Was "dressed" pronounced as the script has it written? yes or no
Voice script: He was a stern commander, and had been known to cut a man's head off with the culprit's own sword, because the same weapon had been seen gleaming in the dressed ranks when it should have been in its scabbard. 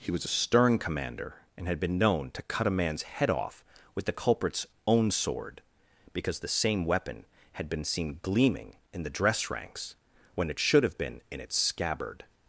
no